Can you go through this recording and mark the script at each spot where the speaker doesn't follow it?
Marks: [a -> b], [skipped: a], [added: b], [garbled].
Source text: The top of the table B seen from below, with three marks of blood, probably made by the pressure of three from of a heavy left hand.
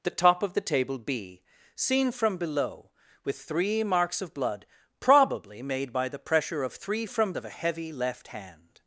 The top of the table B seen from below, with three marks of blood, probably made by the pressure of three from of a heavy left hand.